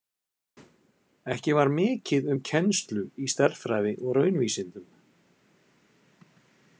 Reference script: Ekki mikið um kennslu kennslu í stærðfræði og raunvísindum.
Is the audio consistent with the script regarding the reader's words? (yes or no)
no